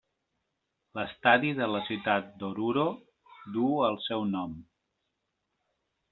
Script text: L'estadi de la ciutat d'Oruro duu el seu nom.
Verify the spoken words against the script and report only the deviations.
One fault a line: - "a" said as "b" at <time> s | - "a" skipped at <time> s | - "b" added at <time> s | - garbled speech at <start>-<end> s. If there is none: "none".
none